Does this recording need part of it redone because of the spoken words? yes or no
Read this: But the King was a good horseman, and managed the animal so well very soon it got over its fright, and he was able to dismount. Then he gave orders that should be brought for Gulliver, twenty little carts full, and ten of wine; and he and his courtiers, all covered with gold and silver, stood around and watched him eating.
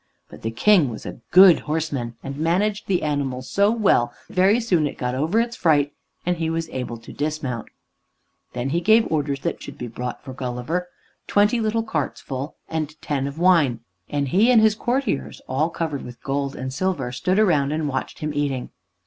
no